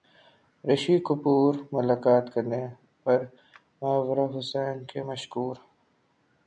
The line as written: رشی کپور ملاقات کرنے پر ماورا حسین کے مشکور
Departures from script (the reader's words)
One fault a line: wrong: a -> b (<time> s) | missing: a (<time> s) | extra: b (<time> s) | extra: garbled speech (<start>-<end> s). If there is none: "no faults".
no faults